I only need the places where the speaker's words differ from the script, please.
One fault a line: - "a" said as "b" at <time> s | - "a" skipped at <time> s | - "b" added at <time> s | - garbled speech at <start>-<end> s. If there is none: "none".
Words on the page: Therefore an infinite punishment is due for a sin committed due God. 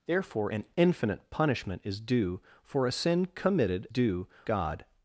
none